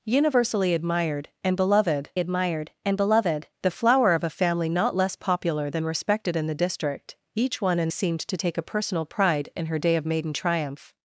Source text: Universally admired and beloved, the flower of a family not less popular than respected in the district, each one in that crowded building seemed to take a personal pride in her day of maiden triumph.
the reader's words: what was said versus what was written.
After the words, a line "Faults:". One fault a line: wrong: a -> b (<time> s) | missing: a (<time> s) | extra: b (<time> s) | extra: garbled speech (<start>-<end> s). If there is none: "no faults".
Universally admired and beloved admired and beloved, the flower of a family not less popular than respected in the district, each one in seemed to take a personal pride in her day of maiden triumph.
Faults:
extra: admired and beloved (2.2 s)
missing: that crowded building (7.9 s)